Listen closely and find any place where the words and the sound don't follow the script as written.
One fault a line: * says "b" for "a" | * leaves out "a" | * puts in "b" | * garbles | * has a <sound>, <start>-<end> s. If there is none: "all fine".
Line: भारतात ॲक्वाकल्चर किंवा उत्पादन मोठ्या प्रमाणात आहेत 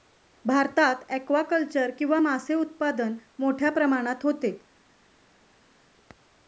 * puts in "मासे"
* says "होते" for "आहेत"